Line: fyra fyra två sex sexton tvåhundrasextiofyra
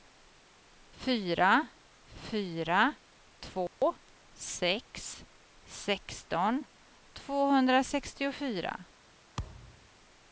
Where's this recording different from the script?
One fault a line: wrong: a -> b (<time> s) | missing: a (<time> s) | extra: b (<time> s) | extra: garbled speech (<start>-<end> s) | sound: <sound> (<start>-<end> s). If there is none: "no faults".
sound: dropout (3.7-3.8 s)
sound: thud (9.4-9.9 s)